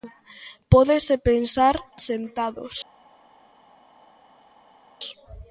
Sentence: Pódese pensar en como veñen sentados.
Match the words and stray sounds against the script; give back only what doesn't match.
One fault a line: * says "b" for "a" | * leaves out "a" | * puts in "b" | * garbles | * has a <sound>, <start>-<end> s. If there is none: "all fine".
* leaves out "en como veñen"